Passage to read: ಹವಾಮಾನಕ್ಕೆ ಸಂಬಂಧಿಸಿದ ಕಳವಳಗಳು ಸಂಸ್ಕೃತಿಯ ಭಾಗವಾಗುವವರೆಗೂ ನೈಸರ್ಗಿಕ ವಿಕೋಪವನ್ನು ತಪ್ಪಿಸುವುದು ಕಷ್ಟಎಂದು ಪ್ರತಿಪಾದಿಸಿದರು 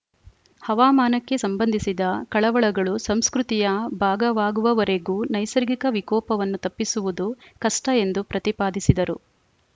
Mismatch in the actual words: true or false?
false